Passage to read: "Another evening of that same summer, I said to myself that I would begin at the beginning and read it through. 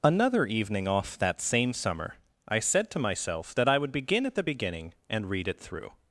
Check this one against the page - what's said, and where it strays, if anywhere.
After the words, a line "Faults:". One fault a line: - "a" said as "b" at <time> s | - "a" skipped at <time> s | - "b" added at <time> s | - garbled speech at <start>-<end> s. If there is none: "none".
"Another evening off that same summer, I said to myself that I would begin at the beginning and read it through.
Faults:
- "of" said as "off" at 0.9 s